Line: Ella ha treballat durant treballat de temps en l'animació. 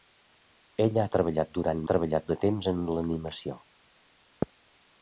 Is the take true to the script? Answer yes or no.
yes